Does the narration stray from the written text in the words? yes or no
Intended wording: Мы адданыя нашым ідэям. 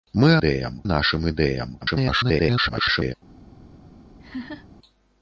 yes